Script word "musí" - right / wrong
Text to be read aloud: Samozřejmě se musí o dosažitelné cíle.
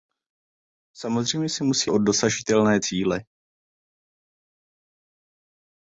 right